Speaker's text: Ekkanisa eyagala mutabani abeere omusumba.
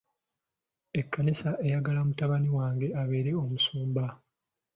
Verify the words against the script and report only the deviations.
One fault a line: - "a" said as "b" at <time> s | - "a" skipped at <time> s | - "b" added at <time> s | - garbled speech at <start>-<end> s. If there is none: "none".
- "wange" added at 2.6 s